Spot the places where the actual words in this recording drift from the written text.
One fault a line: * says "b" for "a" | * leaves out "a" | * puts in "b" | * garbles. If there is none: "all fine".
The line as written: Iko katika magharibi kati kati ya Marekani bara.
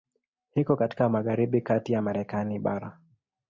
* leaves out "kati"